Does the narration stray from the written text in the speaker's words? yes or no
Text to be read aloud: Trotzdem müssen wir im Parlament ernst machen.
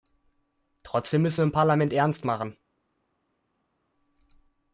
no